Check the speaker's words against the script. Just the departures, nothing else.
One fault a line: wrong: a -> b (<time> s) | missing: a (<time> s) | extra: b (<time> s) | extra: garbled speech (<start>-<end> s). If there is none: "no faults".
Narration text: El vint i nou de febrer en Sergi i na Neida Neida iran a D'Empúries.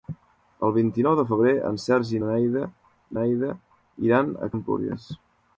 no faults